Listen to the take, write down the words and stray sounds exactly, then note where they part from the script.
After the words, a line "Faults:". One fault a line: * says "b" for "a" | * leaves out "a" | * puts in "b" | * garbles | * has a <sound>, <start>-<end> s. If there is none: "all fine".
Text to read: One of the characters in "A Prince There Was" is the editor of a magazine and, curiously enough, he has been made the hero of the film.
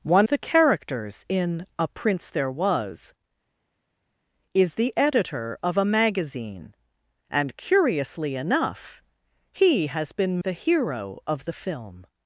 One the characters in "A Prince There Was" is the editor of a magazine and, curiously enough, he has been the hero of the film.
Faults:
* leaves out "of"
* leaves out "made"